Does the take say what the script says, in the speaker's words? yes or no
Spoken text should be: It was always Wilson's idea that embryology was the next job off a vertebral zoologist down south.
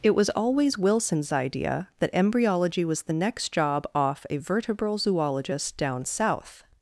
yes